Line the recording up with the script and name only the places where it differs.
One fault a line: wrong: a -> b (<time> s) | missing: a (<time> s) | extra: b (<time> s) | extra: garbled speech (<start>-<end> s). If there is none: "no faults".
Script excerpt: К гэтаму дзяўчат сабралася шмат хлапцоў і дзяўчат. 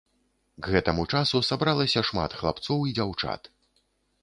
wrong: дзяўчат -> часу (1.2 s)